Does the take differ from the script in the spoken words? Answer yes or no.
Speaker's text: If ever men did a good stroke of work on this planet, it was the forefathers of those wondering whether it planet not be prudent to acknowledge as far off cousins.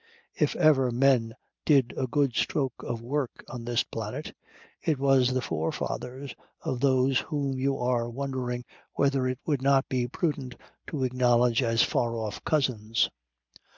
yes